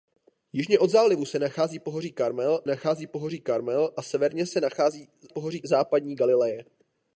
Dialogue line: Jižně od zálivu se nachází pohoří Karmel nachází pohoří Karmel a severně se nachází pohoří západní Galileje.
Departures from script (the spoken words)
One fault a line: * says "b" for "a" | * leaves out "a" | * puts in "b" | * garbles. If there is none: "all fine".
all fine